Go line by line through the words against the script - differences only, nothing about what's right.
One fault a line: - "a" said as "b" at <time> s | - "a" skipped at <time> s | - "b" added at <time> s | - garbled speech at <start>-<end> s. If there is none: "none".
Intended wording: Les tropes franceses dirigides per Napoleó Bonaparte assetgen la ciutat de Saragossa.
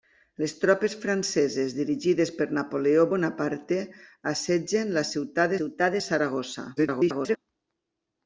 - "ciutat" added at 5.6 s
- garbled speech at 6.8-7.4 s